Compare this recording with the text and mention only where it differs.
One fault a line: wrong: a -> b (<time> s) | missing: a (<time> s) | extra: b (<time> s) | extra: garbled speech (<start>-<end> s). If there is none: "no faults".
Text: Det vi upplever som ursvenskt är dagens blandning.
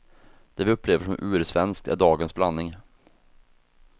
no faults